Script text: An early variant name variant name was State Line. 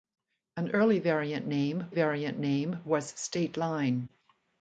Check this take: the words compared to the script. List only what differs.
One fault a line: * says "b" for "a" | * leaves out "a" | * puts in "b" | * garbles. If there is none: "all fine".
all fine